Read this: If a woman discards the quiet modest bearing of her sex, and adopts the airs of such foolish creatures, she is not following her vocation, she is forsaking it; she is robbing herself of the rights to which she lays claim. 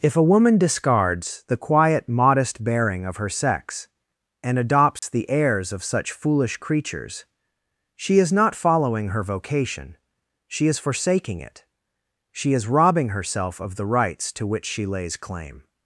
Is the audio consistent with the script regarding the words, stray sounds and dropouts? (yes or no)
no